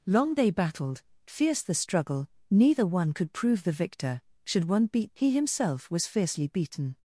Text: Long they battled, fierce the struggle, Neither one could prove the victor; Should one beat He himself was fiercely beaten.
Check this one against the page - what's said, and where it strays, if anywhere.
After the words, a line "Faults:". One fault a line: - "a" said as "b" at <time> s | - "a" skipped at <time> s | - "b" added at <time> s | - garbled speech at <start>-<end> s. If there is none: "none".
Long they battled, fierce the struggle, Neither one could prove the victor; Should one beat He himself was fiercely beaten.
Faults:
none